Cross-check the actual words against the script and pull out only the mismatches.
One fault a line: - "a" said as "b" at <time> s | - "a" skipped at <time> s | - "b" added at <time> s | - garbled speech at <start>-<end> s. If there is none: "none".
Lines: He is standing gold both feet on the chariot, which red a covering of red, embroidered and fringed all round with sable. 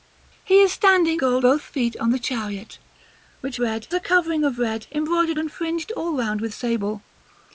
none